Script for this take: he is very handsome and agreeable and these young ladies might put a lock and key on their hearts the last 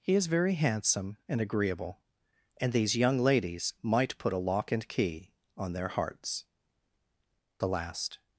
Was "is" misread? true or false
false